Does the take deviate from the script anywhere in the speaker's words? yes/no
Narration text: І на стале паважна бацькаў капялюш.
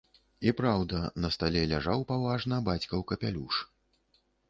yes